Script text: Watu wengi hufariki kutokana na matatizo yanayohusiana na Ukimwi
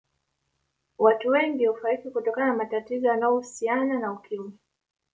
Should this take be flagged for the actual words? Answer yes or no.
no